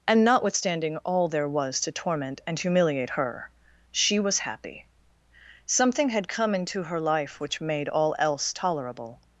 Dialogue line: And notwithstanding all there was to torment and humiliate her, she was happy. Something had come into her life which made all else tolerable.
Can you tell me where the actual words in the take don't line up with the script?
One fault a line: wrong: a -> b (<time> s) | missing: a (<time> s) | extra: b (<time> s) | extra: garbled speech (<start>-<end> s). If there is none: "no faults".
no faults